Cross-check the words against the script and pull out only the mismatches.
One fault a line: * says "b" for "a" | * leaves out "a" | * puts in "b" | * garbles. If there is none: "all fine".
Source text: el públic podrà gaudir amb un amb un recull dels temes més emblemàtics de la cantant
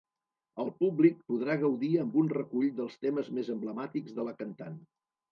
* leaves out "amb un"